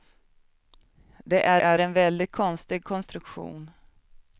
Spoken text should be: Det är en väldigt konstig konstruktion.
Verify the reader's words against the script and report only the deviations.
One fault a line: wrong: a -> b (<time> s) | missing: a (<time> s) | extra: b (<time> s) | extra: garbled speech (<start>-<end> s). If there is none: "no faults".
extra: är (1.6 s)